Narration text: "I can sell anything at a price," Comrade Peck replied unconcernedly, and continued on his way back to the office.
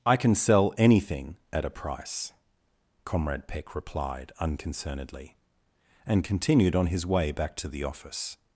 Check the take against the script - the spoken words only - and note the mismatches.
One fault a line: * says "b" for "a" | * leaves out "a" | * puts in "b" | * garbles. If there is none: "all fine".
all fine